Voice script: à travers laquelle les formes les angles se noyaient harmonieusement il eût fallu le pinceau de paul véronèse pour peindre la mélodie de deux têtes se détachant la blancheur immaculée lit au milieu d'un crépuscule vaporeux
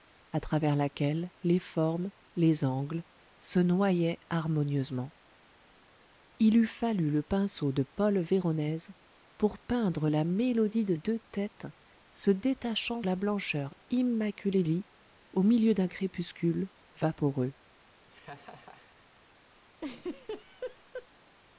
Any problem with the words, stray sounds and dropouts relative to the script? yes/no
yes